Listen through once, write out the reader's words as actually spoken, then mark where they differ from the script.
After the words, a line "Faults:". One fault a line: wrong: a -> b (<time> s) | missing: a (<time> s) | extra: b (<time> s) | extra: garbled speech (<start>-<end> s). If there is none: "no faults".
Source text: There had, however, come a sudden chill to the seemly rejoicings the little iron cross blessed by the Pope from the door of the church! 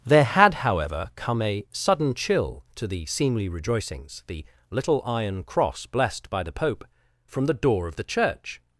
There had, however, come a sudden chill to the seemly rejoicings the little iron cross blessed by the Pope from the door of the church!
Faults:
no faults